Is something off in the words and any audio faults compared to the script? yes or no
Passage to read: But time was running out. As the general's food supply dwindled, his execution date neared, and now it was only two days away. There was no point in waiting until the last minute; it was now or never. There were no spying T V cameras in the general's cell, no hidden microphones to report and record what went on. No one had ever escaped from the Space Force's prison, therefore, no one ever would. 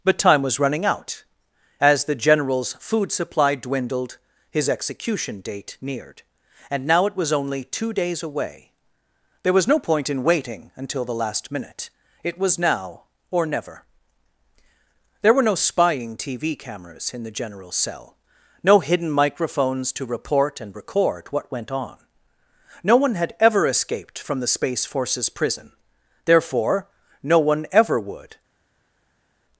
no